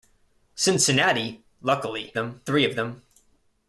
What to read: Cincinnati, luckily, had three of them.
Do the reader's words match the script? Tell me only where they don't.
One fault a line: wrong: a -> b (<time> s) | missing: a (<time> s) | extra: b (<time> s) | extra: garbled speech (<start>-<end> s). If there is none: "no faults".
wrong: had -> them (2.1 s)